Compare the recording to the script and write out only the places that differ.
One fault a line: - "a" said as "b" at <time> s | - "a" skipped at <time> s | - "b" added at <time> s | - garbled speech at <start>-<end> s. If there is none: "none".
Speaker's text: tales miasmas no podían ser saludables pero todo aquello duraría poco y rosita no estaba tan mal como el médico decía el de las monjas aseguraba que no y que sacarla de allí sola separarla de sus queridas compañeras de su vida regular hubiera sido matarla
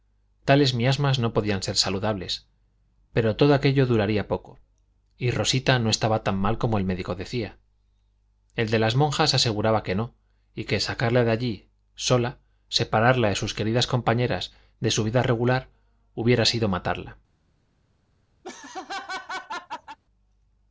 none